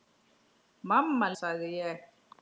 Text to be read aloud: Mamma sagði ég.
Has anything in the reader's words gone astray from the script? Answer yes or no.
no